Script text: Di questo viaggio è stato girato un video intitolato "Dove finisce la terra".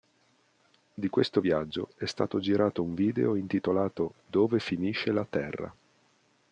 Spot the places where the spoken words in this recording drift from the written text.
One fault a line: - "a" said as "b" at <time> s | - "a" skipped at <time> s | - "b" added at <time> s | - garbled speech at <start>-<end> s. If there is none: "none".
none